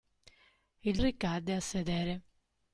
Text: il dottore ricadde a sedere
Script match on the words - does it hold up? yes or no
no